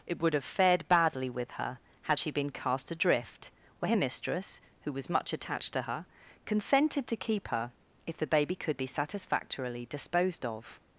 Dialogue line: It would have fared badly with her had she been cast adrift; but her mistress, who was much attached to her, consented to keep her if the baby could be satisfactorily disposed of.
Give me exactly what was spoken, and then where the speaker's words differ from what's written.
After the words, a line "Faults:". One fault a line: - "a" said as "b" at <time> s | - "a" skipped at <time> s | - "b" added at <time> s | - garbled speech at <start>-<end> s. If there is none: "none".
It would have fared badly with her had she been cast adrift; where her mistress, who was much attached to her, consented to keep her if the baby could be satisfactorily disposed of.
Faults:
- "but" said as "where" at 3.8 s